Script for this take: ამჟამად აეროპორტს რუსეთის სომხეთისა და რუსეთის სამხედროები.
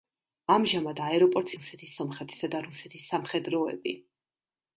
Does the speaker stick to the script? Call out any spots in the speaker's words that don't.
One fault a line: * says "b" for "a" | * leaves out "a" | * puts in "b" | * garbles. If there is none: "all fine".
all fine